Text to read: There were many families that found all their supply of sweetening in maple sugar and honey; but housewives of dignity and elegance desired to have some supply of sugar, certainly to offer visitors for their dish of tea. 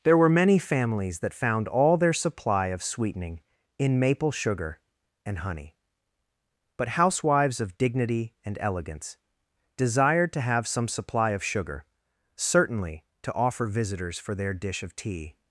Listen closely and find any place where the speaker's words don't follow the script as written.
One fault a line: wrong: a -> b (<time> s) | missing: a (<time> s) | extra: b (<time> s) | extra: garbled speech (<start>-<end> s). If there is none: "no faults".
no faults